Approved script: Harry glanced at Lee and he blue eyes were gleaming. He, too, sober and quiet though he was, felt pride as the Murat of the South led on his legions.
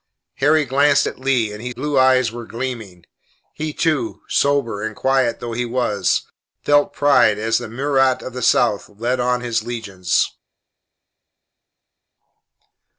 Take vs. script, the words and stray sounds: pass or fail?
pass